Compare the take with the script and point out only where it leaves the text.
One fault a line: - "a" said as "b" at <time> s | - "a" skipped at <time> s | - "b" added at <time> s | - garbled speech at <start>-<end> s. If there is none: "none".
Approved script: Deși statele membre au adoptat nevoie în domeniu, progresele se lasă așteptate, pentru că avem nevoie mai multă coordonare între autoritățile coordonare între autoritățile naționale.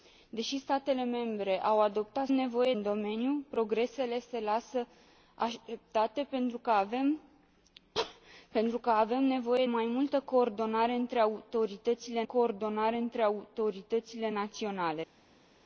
none